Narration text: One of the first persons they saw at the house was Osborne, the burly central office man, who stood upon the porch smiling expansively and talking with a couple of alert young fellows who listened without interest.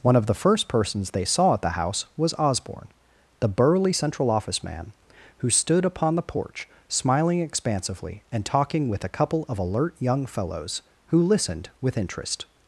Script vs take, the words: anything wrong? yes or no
yes